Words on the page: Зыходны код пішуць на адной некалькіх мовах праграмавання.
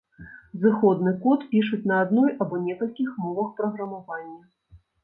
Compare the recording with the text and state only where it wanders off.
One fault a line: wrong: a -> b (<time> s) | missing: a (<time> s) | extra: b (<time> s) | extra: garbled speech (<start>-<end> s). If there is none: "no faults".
extra: або (2.5 s)